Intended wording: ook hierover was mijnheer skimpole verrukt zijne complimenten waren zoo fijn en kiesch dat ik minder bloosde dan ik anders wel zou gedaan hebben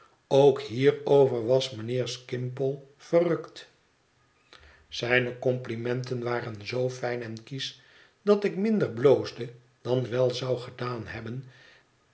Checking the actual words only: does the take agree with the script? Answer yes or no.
no